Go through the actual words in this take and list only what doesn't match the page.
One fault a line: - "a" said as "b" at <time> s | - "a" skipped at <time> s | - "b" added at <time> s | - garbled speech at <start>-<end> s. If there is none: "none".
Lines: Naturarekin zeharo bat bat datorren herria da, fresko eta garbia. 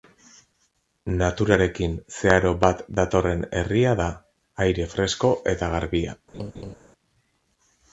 - "bat" skipped at 2.8 s
- "aire" added at 4.7 s